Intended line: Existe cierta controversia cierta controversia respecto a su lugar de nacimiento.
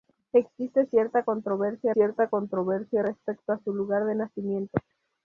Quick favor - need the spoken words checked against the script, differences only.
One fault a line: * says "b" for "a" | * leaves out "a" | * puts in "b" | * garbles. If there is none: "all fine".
all fine